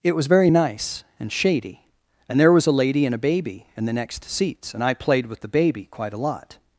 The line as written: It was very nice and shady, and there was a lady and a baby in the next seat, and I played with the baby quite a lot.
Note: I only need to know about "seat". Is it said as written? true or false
false